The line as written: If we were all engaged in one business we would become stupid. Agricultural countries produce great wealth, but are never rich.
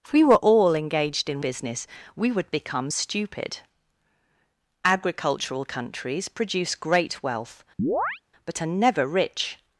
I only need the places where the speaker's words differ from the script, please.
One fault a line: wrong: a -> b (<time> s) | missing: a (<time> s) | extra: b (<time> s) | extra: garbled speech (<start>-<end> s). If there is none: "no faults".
missing: one (1.4 s)